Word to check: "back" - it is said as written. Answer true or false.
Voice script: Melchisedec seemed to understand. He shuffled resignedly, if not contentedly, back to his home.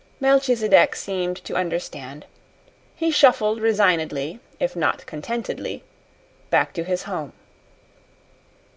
true